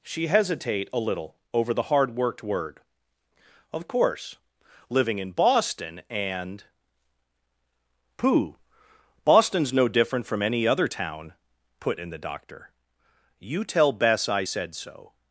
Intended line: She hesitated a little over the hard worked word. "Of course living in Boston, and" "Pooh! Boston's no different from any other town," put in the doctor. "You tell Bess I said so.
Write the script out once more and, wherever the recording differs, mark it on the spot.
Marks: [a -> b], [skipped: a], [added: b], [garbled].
She [hesitated -> hesitate] a little over the hard worked word. "Of course living in Boston, and" "Pooh! Boston's no different from any other town," put in the doctor. "You tell Bess I said so.